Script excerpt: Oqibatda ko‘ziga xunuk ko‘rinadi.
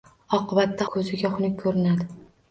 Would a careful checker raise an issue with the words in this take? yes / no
no